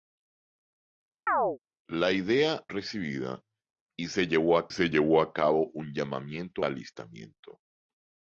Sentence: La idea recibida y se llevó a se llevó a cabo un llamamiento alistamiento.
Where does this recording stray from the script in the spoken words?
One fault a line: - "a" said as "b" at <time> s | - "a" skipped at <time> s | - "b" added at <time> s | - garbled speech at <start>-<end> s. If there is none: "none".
none